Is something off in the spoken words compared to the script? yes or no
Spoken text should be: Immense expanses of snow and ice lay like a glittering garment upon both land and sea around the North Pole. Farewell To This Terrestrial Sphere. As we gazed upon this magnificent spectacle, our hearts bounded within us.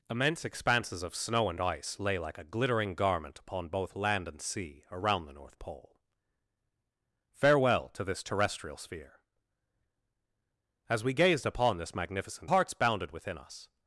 yes